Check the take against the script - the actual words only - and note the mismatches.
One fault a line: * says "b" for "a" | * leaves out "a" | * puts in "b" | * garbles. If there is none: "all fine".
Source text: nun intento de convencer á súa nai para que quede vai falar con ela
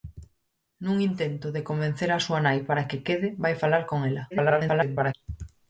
* garbles